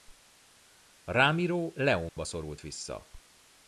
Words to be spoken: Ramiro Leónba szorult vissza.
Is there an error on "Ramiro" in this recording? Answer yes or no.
no